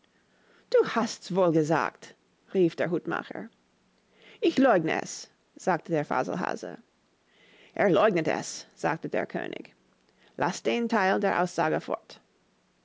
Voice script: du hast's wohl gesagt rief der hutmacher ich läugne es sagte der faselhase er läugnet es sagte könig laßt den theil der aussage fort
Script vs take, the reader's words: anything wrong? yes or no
yes